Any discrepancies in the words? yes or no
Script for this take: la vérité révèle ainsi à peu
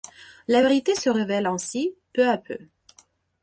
yes